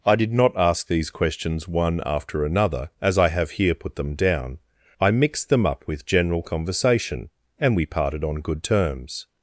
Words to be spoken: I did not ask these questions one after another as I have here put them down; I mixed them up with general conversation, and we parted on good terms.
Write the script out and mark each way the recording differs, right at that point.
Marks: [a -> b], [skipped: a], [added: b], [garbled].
I did not ask these questions one after another as I have here put them down; I mixed them up with general conversation, and we parted on good terms.